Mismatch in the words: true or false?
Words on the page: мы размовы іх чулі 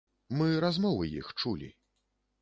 false